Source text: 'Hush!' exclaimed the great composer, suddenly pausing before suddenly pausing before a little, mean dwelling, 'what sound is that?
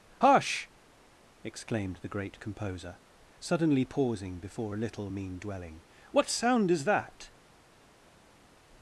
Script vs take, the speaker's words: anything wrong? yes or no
yes